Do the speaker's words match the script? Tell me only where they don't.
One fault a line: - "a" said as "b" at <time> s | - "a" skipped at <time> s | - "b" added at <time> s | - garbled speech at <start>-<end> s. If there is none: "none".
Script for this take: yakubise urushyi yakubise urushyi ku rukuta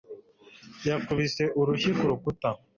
- "yakubise urushyi" skipped at 1.9 s